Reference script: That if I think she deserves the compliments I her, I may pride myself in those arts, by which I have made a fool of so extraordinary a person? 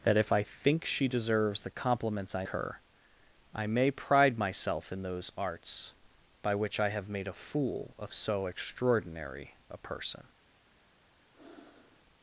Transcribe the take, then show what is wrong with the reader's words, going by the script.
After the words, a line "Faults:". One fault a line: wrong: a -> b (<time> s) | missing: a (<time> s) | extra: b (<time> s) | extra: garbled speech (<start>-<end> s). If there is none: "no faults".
That if I think she deserves the compliments I her, I may pride myself in those arts, by which I have made a fool of so extraordinary a person?
Faults:
no faults